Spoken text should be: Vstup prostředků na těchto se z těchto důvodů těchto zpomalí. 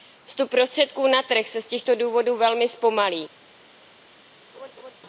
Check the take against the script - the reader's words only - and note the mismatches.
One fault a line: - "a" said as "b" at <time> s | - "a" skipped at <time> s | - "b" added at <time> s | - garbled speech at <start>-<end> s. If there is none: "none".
- "těchto" said as "trh" at 1.2 s
- "těchto" said as "velmi" at 2.4 s